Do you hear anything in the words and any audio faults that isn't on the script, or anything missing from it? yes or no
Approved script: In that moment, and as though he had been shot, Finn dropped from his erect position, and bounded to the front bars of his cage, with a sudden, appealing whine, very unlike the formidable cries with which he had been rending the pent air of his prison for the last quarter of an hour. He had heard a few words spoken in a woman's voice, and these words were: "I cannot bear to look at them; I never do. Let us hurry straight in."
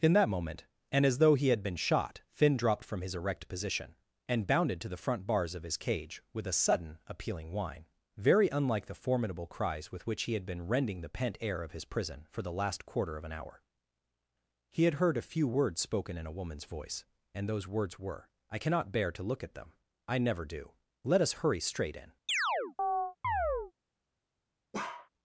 yes